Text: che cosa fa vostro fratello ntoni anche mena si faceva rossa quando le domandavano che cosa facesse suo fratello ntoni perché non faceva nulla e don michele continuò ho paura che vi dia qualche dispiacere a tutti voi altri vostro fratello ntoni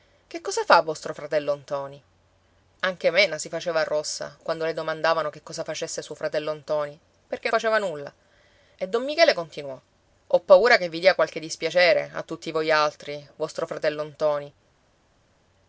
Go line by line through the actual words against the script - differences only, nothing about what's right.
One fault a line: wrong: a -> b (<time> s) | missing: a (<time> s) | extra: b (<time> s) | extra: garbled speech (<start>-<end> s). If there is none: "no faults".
missing: non (7.5 s)